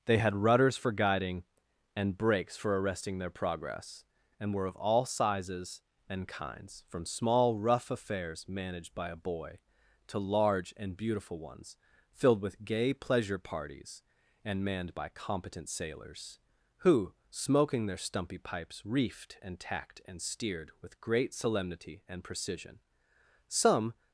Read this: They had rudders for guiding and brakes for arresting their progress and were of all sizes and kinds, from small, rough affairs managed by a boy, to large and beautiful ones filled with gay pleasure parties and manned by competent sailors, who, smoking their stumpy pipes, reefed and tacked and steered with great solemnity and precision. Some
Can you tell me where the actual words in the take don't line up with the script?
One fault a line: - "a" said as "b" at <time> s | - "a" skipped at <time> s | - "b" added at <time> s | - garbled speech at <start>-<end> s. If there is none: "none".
none